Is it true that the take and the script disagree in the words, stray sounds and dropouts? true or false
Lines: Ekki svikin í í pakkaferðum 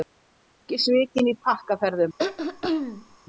true